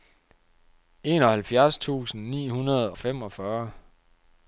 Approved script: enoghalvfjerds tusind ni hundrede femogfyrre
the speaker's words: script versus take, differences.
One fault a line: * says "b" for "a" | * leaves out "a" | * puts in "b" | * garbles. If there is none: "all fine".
all fine